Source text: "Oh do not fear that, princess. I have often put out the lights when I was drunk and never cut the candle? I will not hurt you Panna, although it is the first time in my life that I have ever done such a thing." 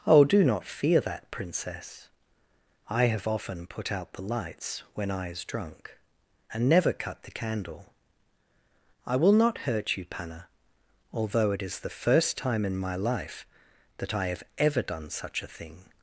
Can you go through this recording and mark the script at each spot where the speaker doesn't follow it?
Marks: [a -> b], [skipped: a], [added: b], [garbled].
"Oh do not fear that, princess. I have often put out the lights when I [was -> is] drunk and never cut the candle? I will not hurt you Panna, although it is the first time in my life that I have ever done such a thing."